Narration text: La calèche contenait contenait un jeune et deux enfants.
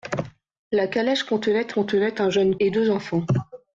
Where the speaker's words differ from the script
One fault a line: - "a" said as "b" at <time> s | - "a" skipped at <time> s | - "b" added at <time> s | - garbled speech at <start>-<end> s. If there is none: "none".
none